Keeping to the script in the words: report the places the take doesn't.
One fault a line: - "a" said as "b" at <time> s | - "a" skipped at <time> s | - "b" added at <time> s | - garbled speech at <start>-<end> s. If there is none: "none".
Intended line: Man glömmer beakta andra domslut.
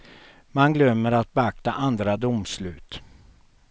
- "att" added at 1.1 s